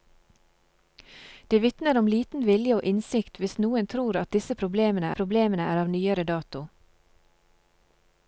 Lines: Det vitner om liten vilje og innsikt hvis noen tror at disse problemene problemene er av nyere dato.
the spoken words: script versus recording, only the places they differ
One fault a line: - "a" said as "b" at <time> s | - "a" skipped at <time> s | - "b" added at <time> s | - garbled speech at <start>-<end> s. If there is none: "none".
none